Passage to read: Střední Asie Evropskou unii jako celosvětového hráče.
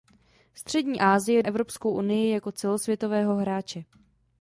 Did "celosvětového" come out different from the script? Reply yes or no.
no